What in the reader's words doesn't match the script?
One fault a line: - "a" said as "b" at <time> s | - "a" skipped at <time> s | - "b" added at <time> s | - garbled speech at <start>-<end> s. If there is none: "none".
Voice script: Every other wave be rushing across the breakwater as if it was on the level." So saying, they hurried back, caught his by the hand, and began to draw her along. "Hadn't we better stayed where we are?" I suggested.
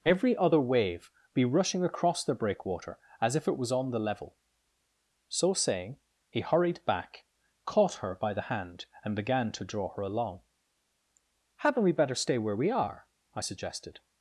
- "they" said as "he" at 6.3 s
- "his" said as "her" at 8.0 s
- "stayed" said as "stay" at 12.1 s